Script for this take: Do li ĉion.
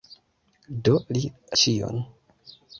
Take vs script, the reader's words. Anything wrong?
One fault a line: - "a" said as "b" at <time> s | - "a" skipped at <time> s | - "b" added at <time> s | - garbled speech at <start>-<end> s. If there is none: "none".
none